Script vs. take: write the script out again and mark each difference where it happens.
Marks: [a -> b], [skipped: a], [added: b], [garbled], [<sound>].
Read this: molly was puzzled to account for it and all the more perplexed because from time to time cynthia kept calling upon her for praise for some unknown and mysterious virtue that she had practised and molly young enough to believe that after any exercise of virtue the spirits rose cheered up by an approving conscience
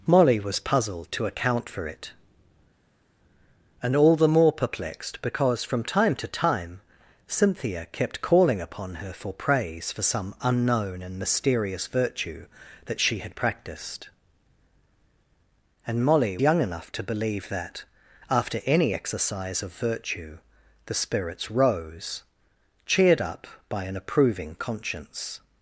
molly was puzzled to account for it and all the more perplexed because from time to time cynthia kept calling upon her for praise for some unknown and mysterious virtue that she had practised and molly young enough to believe that after any exercise of virtue the spirits rose cheered up by an approving conscience